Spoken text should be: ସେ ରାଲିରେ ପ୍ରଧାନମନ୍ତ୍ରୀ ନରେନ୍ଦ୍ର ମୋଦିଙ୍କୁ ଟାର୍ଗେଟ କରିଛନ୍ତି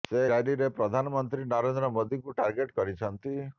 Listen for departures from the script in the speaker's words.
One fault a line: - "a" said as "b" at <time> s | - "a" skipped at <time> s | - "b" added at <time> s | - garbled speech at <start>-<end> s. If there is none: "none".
none